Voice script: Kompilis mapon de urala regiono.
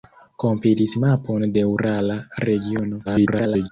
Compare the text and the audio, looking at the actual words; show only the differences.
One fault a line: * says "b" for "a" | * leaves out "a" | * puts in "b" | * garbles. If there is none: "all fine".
* garbles